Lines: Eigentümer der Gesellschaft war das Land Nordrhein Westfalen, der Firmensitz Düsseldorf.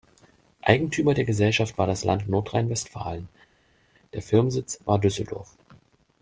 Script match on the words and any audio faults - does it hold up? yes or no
no